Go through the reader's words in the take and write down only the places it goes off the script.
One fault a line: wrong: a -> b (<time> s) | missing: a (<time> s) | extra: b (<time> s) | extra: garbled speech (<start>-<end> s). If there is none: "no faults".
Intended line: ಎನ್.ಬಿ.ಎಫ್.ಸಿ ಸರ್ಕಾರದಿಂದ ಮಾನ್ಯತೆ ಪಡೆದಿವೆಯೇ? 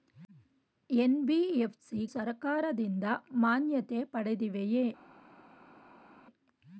no faults